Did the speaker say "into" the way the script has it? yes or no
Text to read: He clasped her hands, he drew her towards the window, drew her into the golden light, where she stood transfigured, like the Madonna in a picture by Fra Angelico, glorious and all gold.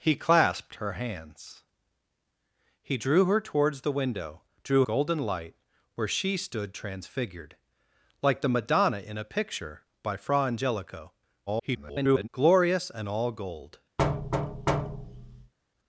no